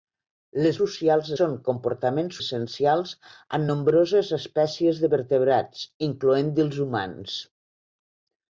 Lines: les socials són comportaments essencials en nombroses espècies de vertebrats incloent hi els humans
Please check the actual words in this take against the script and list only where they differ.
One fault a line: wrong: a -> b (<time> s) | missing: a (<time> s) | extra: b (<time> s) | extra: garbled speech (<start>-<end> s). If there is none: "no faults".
no faults